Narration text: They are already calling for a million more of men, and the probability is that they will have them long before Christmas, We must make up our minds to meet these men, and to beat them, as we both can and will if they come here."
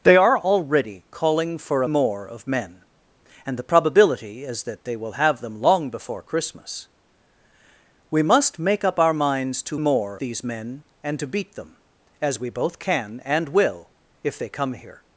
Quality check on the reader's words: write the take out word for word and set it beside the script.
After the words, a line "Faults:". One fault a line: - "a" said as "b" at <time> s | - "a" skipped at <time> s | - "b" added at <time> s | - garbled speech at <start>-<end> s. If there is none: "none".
They are already calling for a more of men, and the probability is that they will have them long before Christmas, We must make up our minds to more these men, and to beat them, as we both can and will if they come here."
Faults:
- "million" skipped at 1.9 s
- "meet" said as "more" at 9.8 s